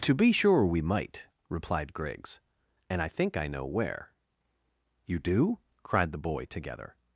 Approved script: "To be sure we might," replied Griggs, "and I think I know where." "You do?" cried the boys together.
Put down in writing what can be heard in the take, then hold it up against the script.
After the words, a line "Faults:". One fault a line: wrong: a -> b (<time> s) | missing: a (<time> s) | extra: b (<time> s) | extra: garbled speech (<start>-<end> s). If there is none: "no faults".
"To be sure we might," replied Griggs, "and I think I know where." "You do?" cried the boy together.
Faults:
wrong: boys -> boy (6.2 s)